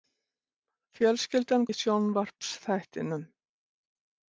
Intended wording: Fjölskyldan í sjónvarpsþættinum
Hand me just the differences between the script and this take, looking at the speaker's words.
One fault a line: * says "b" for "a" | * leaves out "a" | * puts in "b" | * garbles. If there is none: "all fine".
all fine